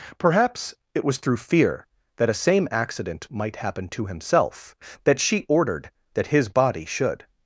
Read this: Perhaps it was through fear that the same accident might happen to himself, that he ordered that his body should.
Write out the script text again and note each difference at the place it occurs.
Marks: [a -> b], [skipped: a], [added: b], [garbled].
Perhaps it was through fear that [the -> a] same accident might happen to himself, that [he -> she] ordered that his body should.